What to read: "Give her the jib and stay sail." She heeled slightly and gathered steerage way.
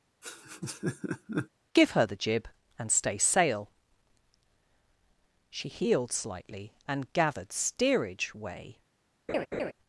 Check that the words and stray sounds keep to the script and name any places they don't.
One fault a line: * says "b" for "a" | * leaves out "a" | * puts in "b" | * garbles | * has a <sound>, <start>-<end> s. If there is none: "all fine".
* has a laugh, 0.2-1.5 s
* has a laugh, 9.3-9.7 s